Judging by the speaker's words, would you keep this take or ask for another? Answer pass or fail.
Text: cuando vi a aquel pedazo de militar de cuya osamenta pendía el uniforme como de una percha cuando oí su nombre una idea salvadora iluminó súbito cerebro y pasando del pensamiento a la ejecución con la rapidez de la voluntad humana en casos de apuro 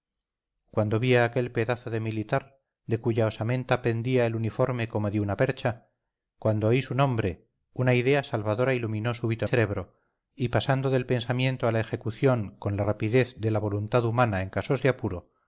pass